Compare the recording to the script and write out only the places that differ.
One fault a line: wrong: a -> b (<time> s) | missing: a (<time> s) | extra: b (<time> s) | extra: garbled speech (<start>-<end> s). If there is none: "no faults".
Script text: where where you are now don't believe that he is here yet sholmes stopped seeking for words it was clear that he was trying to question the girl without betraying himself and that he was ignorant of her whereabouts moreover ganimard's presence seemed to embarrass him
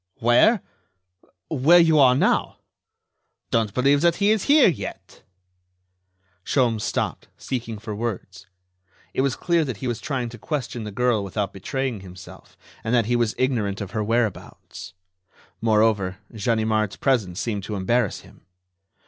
no faults